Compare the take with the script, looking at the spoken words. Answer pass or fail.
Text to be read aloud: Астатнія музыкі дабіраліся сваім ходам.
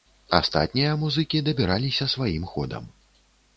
pass